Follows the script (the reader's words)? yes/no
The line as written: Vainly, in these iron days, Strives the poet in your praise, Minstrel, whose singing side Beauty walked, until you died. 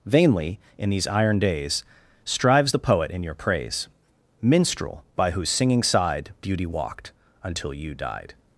no